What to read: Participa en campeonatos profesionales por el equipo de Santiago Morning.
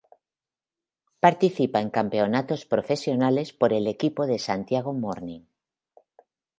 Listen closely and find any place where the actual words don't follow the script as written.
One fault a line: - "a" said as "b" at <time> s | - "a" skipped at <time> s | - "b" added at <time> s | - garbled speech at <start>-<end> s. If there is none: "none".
none